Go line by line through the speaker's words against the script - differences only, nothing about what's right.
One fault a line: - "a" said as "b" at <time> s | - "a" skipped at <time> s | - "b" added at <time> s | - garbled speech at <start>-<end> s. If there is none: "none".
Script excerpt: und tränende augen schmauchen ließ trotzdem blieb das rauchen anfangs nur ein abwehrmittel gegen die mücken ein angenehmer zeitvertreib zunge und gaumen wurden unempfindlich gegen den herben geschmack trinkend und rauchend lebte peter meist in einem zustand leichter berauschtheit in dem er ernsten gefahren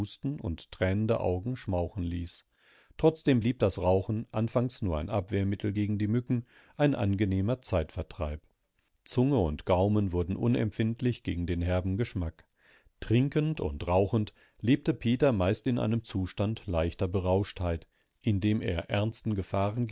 none